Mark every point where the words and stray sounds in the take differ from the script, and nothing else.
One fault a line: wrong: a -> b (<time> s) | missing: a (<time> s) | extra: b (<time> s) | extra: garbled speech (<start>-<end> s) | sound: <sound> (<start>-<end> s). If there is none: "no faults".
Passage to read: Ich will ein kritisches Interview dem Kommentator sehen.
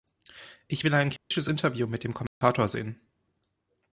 sound: dropout (1.2-1.3 s)
extra: mit (1.9 s)
sound: dropout (2.3-2.4 s)